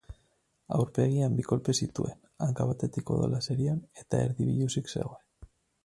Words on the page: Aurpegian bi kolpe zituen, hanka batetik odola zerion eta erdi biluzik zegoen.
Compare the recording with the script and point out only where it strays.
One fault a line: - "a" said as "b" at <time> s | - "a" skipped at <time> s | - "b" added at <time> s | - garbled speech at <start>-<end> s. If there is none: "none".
none